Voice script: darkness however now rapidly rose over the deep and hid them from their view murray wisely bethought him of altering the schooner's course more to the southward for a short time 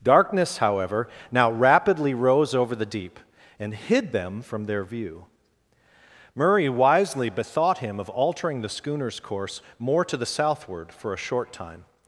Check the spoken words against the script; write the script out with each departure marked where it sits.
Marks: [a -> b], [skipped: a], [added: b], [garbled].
darkness however now rapidly rose over the deep and hid them from their view murray wisely bethought him of altering the schooner's course more to the southward for a short time